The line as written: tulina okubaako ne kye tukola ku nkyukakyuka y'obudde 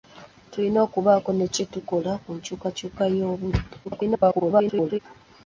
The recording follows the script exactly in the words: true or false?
false